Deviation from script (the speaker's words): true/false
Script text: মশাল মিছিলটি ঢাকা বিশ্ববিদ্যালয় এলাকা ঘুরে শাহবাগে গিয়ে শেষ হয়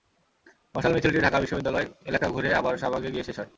true